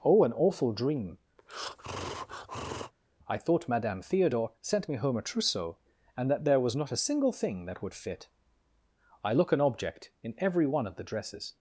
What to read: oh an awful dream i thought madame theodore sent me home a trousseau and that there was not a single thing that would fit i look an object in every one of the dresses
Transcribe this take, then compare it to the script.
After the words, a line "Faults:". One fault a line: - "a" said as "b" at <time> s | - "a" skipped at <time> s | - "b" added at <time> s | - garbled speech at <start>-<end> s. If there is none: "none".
oh an awful dream i thought madame theodore sent me home a trousseau and that there was not a single thing that would fit i look an object in every one of the dresses
Faults:
none